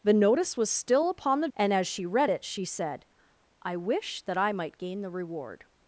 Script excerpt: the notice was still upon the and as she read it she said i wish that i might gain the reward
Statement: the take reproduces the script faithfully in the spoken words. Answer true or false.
true